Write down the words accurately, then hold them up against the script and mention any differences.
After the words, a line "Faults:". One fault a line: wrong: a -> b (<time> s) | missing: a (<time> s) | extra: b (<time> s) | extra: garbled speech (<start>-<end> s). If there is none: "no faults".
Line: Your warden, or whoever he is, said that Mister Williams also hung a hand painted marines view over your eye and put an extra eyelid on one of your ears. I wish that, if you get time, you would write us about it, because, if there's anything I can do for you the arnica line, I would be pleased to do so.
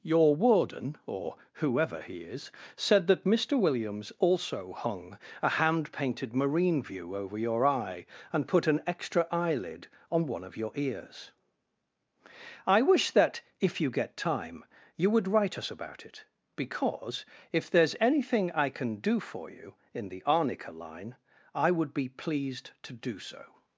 Your warden, or whoever he is, said that Mister Williams also hung a hand painted marine view over your eye and put an extra eyelid on one of your ears. I wish that, if you get time, you would write us about it, because, if there's anything I can do for you in the arnica line, I would be pleased to do so.
Faults:
wrong: marines -> marine (6.3 s)
extra: in (19.9 s)